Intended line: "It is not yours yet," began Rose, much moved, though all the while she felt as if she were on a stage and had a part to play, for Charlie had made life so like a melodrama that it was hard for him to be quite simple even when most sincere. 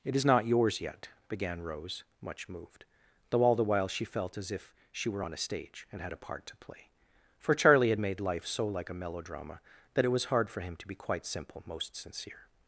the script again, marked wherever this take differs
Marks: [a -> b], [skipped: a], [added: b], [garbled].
"It is not yours yet," began Rose, much moved, though all the while she felt as if she were on a stage and had a part to play, for Charlie had made life so like a melodrama that it was hard for him to be quite simple [skipped: even when] most sincere.